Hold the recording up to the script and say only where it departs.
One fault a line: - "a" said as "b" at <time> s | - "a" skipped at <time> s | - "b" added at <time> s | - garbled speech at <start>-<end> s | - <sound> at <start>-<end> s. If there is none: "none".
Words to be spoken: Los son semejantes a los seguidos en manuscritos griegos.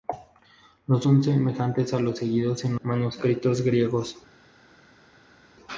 none